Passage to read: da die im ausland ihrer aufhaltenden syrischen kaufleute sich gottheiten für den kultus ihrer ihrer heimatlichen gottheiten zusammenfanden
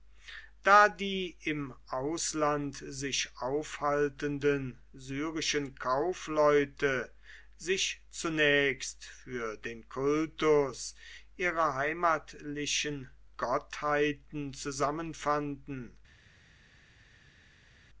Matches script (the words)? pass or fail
fail